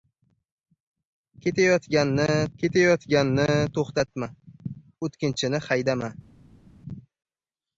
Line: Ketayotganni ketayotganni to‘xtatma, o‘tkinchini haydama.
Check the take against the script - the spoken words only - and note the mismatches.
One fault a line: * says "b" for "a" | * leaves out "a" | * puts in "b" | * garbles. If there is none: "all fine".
all fine